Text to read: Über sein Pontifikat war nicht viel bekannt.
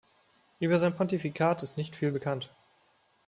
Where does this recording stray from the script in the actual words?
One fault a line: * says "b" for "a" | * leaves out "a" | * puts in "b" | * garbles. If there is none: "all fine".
* says "ist" for "war"